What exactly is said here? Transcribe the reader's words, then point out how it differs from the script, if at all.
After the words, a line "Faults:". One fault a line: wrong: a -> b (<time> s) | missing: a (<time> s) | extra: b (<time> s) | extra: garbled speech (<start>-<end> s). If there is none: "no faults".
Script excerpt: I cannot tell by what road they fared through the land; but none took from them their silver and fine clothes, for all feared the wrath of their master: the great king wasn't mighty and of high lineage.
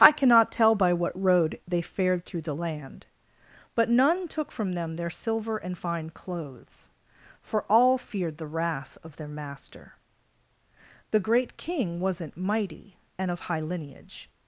I cannot tell by what road they fared through the land; but none took from them their silver and fine clothes, for all feared the wrath of their master: the great king wasn't mighty and of high lineage.
Faults:
no faults